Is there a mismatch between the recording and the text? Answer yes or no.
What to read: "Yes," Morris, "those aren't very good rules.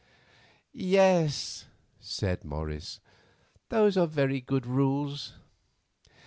yes